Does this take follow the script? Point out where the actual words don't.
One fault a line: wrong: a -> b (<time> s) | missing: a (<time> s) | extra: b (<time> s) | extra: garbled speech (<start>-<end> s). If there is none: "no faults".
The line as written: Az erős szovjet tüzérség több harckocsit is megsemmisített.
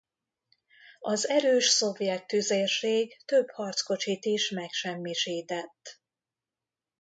no faults